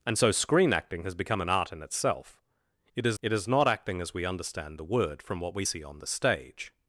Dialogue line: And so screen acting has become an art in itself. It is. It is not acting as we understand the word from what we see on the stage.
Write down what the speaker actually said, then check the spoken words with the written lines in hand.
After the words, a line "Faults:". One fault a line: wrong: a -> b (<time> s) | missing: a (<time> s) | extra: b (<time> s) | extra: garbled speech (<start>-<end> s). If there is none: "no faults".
And so screen acting has become an art in itself. It is. It is not acting as we understand the word from what we see on the stage.
Faults:
no faults